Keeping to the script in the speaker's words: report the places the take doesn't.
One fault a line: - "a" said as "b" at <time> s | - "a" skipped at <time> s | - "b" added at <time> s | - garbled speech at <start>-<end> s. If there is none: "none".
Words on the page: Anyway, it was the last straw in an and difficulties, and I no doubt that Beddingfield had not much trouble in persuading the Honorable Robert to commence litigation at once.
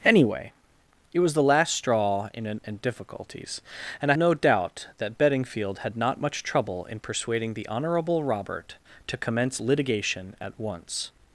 none